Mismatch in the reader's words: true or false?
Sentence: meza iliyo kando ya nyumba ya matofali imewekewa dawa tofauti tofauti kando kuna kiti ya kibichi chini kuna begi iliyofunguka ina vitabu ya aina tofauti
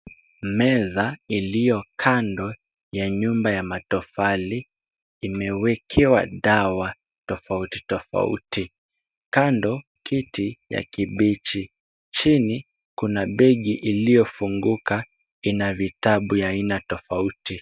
true